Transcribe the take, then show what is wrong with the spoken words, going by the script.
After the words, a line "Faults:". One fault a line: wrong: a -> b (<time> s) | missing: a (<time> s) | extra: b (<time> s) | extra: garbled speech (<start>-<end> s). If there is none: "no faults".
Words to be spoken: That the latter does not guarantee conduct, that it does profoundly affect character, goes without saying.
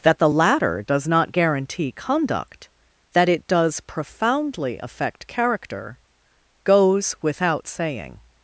That the latter does not guarantee conduct, that it does profoundly affect character, goes without saying.
Faults:
no faults